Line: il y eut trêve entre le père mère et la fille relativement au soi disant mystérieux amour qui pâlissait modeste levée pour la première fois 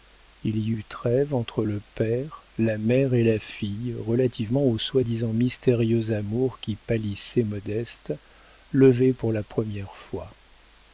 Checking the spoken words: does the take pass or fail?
fail